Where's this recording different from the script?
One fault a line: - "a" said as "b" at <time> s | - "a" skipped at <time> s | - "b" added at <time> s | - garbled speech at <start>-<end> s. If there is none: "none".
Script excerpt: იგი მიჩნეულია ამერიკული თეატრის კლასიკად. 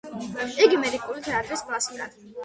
- "მიჩნეულია" skipped at 0.8 s